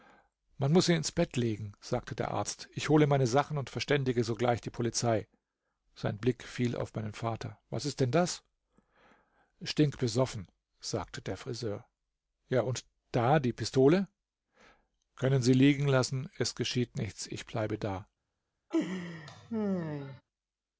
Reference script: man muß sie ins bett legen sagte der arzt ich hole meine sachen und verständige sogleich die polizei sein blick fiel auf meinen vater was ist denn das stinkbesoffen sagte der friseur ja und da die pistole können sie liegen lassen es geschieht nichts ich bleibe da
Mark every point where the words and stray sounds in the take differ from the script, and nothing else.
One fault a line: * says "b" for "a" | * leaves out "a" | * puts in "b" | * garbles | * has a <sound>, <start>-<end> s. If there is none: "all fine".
* has a laugh, 18.7-20.2 s